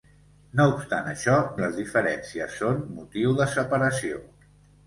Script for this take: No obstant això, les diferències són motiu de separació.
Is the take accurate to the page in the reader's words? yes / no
yes